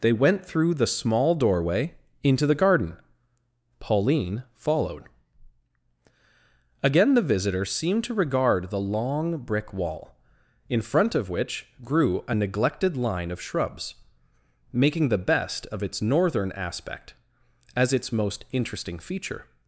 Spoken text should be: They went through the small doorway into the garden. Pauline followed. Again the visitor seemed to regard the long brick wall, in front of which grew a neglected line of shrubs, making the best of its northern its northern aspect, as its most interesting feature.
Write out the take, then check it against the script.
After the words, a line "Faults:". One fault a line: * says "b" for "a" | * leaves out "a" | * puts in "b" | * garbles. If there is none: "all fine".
They went through the small doorway into the garden. Pauline followed. Again the visitor seemed to regard the long brick wall, in front of which grew a neglected line of shrubs, making the best of its northern aspect, as its most interesting feature.
Faults:
* leaves out "its northern"